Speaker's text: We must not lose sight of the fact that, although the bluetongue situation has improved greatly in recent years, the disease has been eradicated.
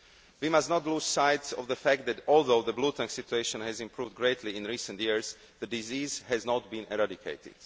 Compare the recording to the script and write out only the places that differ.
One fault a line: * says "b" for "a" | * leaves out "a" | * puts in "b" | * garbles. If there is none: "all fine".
* puts in "not"